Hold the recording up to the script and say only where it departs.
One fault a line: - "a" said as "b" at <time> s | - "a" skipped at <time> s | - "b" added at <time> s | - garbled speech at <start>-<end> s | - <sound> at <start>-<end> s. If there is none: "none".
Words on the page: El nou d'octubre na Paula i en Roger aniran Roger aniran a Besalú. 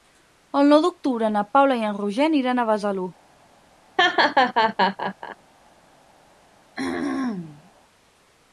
- "Roger aniran" skipped at 2.6 s
- laugh at 4.0-5.4 s
- throat clearing at 6.7-7.7 s